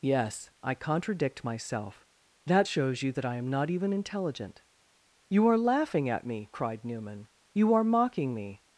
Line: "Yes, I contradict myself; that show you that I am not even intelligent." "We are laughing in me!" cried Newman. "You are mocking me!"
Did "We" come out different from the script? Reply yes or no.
yes